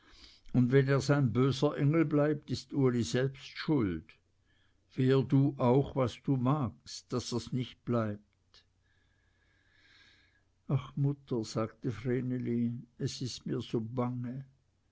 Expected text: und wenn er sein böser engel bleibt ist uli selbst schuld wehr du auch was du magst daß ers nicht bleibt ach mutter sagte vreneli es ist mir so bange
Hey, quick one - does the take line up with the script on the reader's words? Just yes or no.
yes